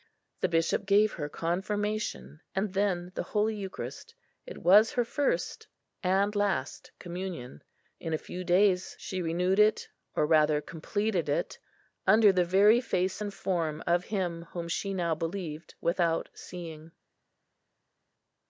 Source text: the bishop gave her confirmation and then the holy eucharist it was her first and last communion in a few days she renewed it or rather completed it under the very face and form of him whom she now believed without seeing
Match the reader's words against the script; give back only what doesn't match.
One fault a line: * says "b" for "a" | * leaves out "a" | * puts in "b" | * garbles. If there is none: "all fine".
all fine